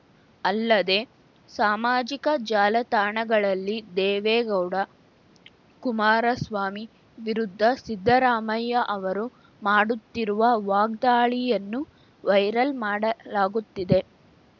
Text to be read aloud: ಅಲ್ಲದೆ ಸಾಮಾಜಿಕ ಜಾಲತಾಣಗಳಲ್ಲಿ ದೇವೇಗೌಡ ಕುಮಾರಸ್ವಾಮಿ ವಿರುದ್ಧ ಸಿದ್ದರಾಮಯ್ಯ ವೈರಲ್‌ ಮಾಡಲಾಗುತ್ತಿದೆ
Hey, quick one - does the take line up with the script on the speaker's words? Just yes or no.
no